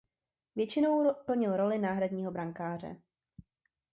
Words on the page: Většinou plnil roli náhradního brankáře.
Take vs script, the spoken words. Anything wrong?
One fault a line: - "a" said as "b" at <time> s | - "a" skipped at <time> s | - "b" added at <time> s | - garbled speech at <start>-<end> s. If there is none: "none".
none